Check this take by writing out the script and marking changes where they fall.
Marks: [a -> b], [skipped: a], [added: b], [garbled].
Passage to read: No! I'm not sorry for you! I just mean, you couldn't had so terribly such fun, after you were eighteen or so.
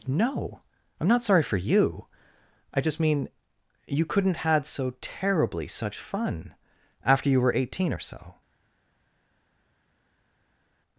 No! I'm not sorry for you! I just mean, you couldn't had so terribly such fun, after you were eighteen or so.